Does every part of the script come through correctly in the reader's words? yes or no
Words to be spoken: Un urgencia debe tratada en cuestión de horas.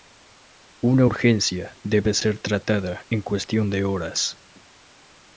no